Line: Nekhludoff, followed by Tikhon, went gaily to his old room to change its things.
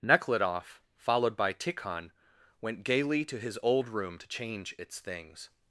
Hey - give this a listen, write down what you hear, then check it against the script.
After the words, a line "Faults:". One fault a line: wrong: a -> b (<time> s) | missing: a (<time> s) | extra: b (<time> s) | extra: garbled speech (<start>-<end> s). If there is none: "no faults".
Nekhludoff, followed by Tikhon, went gaily to his old room to change its things.
Faults:
no faults